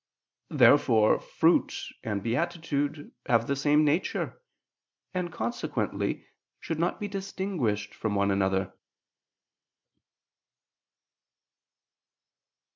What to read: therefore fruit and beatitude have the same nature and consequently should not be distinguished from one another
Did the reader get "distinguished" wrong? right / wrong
right